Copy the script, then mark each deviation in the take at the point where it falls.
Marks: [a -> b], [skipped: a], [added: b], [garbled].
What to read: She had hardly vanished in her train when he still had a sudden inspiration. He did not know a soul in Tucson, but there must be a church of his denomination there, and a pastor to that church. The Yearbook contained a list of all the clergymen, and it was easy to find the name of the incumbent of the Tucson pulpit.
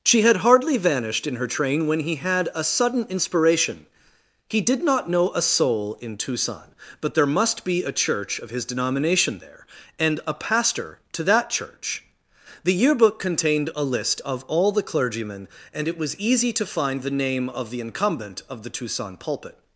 She had hardly vanished in her train when he [skipped: still] had a sudden inspiration. He did not know a soul in Tucson, but there must be a church of his denomination there, and a pastor to that church. The Yearbook contained a list of all the clergymen, and it was easy to find the name of the incumbent of the Tucson pulpit.